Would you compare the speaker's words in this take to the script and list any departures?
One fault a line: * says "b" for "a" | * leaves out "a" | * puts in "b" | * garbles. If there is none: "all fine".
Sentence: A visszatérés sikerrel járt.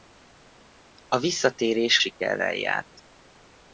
all fine